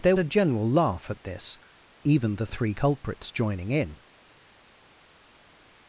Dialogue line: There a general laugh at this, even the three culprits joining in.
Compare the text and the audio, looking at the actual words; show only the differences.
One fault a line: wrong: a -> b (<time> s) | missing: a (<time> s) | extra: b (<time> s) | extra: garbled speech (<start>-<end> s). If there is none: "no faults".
no faults